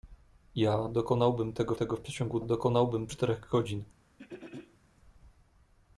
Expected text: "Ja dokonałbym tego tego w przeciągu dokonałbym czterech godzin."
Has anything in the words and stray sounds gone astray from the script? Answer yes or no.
yes